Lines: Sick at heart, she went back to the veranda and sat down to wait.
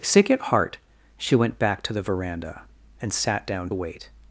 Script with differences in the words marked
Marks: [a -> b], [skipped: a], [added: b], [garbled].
Sick at heart, she went back to the veranda and sat down [skipped: to] wait.